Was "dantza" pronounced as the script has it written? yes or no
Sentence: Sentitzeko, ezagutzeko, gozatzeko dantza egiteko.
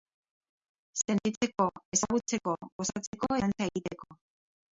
yes